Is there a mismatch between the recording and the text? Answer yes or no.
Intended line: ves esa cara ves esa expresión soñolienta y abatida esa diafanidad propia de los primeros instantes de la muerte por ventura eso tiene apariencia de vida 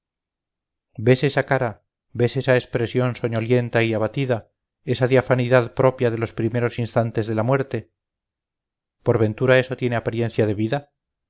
no